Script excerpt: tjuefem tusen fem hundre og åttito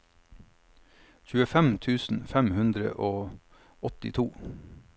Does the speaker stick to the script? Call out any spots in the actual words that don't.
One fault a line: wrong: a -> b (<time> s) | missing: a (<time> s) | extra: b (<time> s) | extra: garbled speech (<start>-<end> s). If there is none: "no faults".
no faults